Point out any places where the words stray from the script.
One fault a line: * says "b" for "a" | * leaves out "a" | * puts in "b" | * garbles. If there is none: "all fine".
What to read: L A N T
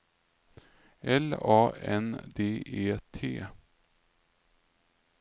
* puts in "D E"